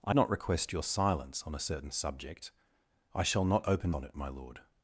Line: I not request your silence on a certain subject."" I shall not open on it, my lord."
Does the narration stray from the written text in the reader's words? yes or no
no